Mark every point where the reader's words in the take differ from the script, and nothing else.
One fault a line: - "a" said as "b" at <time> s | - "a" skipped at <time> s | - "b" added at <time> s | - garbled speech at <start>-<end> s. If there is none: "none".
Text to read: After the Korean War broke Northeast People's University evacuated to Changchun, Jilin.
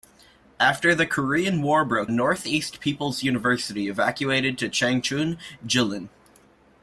none